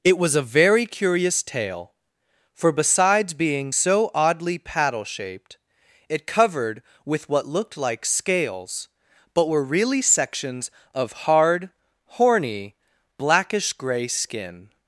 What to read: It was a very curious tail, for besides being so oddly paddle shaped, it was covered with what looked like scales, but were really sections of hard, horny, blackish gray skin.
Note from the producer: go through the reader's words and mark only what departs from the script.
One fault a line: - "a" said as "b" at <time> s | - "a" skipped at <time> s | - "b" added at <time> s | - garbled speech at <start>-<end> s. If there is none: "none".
- "was" skipped at 6.3 s